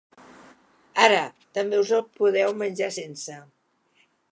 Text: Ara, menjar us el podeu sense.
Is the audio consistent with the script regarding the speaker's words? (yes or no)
no